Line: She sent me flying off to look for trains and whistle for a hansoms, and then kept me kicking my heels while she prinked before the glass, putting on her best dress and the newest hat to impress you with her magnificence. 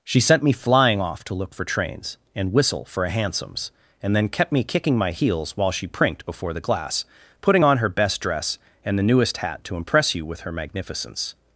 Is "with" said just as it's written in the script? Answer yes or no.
yes